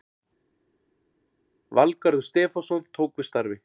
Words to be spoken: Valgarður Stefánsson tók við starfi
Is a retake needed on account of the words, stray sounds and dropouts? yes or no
no